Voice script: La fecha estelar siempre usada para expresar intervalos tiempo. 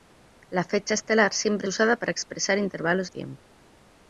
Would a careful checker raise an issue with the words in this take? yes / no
no